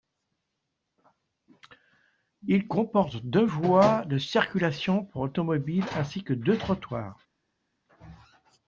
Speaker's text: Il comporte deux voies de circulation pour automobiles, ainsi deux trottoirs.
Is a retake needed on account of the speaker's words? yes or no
yes